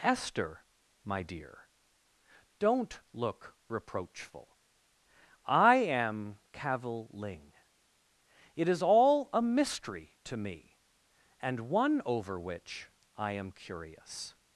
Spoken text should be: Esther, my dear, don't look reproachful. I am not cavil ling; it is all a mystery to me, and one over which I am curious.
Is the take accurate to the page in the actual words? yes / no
no